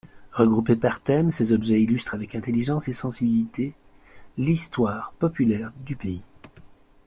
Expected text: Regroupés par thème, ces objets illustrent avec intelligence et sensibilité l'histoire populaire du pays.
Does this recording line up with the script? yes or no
yes